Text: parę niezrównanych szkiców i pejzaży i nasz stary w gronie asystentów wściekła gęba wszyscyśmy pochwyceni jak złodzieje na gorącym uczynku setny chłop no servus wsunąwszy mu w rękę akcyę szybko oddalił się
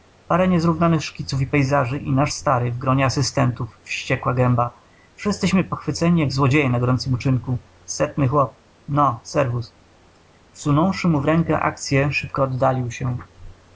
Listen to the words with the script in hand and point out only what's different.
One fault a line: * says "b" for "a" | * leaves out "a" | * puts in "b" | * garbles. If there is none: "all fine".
all fine